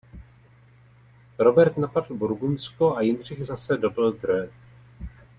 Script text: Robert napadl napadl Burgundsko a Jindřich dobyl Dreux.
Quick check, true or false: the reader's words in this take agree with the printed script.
false